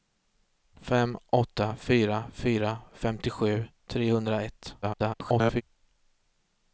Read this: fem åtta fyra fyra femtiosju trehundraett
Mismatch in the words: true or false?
true